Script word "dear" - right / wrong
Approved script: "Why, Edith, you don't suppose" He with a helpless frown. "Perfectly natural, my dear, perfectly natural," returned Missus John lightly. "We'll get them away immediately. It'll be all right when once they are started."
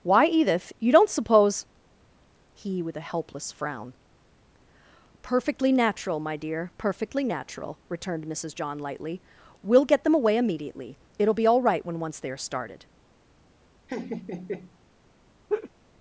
right